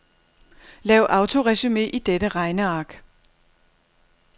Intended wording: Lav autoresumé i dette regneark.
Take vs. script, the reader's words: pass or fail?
pass